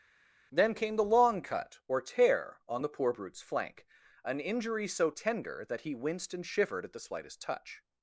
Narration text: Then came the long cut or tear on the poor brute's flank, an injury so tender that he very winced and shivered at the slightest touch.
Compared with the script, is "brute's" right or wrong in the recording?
right